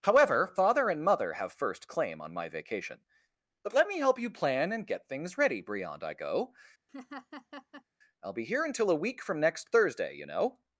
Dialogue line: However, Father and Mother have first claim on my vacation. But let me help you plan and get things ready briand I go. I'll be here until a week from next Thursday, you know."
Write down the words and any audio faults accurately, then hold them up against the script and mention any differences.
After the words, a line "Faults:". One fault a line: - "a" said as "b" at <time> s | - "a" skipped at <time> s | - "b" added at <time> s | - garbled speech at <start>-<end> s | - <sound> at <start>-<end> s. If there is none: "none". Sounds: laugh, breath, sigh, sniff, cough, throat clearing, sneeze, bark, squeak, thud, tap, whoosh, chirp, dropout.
However, Father and Mother have first claim on my vacation. But let me help you plan and get things ready briand I go. I'll be here until a week from next Thursday, you know."
Faults:
- laugh at 6.9-7.8 s